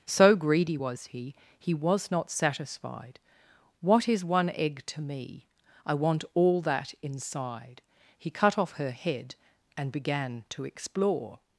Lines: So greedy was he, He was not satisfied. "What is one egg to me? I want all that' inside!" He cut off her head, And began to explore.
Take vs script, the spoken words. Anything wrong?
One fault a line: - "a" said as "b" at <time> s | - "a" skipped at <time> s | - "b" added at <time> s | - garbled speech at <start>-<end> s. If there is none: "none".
none